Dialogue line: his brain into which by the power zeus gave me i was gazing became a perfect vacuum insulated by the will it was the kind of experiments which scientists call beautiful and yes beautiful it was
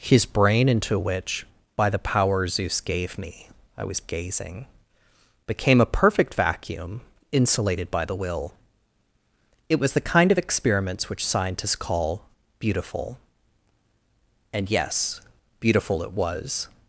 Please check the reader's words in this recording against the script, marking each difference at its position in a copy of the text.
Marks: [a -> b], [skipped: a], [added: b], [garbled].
his brain into which by the power zeus gave me i was gazing became a perfect vacuum insulated by the will it was the kind of experiments which scientists call beautiful and yes beautiful it was